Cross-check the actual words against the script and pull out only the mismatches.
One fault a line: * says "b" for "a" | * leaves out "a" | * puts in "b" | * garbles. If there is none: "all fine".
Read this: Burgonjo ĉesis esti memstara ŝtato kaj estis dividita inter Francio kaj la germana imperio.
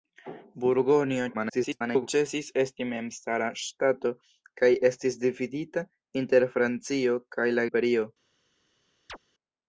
* garbles
* leaves out "germana"